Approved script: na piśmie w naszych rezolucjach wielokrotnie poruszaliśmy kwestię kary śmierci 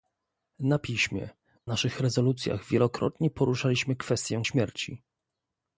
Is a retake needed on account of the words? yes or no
yes